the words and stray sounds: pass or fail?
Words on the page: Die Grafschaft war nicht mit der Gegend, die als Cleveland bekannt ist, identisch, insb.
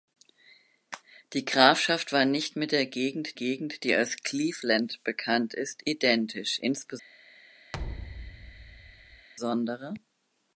fail